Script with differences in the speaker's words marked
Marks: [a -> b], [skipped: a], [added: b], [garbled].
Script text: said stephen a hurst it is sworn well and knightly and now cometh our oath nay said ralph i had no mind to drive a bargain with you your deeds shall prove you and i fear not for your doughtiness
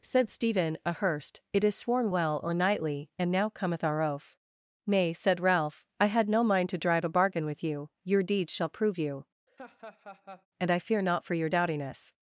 said stephen a hurst it is sworn well [and -> or] knightly and now cometh our oath nay said ralph i had no mind to drive a bargain with you your deeds shall prove you and i fear not for your doughtiness